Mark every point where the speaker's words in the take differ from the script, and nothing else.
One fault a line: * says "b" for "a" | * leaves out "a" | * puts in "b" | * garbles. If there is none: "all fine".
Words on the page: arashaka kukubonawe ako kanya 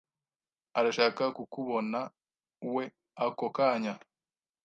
all fine